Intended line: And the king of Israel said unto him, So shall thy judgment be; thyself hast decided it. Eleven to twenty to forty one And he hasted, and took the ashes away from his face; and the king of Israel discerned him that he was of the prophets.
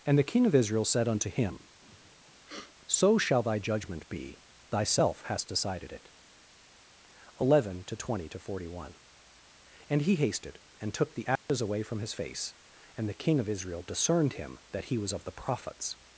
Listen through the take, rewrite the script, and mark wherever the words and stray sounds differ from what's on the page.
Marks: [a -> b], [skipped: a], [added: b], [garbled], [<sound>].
And the king of Israel said unto him, [sniff] So shall thy judgment be; thyself hast decided it. Eleven to twenty to forty one And he hasted, and took the ashes [dropout] away from his face; and the king of Israel discerned him that he was of the prophets.